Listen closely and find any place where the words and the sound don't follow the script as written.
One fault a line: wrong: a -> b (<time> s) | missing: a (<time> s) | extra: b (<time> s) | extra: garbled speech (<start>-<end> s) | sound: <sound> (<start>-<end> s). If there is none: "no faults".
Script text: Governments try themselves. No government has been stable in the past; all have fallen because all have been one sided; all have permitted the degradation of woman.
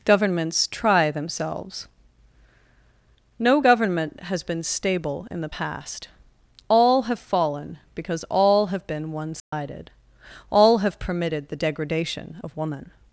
sound: dropout (9.4-9.5 s)